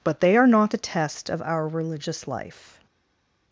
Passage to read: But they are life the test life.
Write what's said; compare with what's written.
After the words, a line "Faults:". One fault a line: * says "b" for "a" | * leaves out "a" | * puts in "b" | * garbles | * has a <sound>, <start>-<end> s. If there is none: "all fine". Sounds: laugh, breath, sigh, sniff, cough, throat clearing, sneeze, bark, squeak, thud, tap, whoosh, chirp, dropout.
But they are not the test of our religious life.
Faults:
* says "not" for "life"
* puts in "of our religious"